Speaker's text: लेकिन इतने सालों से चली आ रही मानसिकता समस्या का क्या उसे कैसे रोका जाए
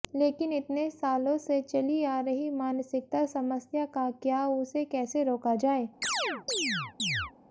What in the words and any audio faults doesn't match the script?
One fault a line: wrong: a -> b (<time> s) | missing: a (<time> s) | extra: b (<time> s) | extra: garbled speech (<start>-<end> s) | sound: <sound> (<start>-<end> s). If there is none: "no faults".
sound: chirp (6.0-7.3 s)